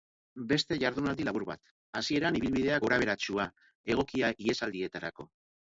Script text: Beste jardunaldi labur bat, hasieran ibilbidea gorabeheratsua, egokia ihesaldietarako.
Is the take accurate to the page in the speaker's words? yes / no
yes